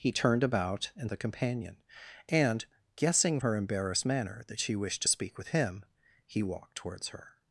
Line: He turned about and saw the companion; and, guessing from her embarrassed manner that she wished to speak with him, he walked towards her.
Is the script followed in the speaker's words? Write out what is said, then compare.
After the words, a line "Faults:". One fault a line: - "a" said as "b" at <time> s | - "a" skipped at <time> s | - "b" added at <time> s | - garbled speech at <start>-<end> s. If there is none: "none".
He turned about and the companion; and, guessing her embarrassed manner that she wished to speak with him, he walked towards her.
Faults:
- "saw" skipped at 1.1 s
- "from" skipped at 3.4 s